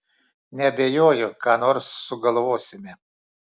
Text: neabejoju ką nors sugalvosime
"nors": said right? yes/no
yes